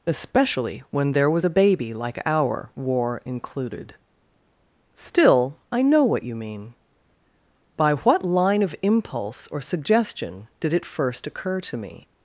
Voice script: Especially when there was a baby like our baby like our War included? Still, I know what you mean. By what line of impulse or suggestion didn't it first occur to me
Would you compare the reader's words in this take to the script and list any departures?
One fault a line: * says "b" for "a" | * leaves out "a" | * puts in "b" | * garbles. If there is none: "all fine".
* leaves out "baby like our"
* says "did" for "didn't"